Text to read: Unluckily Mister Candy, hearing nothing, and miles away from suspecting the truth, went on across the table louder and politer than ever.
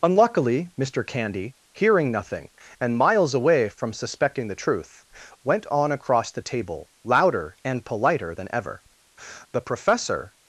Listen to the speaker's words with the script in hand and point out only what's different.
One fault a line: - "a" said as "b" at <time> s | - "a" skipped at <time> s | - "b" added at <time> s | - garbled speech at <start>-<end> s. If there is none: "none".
- "The Professor" added at 9.5 s